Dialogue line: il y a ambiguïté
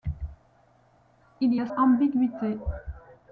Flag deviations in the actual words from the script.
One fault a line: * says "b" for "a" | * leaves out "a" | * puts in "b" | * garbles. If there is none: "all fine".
all fine